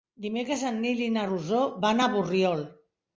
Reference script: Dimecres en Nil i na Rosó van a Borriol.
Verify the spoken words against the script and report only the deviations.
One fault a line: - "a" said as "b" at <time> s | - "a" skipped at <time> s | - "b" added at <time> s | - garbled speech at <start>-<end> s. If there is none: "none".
none